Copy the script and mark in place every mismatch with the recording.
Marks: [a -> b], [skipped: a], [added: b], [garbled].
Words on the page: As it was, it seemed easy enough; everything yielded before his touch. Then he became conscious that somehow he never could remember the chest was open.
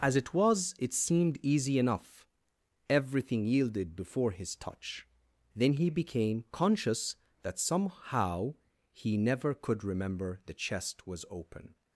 As it was, it seemed easy enough; everything yielded before his touch. Then he became conscious that somehow he never could remember the chest was open.